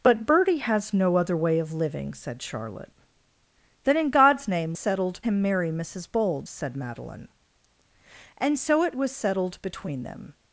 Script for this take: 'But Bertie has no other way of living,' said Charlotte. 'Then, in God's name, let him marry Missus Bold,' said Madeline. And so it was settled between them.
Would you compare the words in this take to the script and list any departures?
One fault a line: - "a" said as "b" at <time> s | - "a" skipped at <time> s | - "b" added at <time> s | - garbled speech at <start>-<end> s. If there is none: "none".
- "let" said as "settled" at 4.7 s